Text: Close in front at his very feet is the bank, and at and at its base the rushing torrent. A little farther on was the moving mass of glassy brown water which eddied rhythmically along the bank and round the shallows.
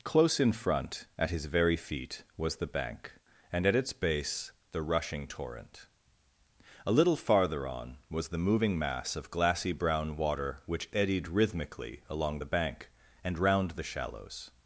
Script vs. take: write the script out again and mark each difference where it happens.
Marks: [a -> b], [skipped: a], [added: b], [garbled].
Close in front at his very feet [is -> was] the bank, and at [skipped: and at] its base the rushing torrent. A little farther on was the moving mass of glassy brown water which eddied rhythmically along the bank and round the shallows.